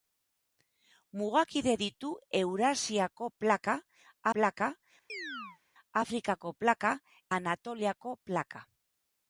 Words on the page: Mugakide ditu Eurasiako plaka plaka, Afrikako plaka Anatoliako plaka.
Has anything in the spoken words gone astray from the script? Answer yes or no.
no